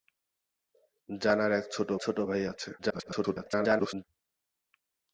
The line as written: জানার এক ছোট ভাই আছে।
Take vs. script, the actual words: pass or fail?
fail